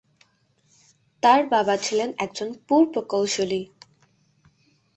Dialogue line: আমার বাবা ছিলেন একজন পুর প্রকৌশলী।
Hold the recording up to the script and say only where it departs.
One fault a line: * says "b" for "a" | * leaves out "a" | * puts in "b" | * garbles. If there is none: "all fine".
* says "তার" for "আমার"